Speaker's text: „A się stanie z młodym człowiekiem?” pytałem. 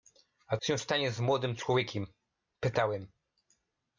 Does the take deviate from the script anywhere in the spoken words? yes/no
no